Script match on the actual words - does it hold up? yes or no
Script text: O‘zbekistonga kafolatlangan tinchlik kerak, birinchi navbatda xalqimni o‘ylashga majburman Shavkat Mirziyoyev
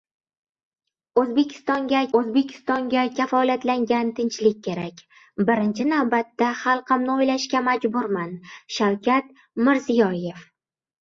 no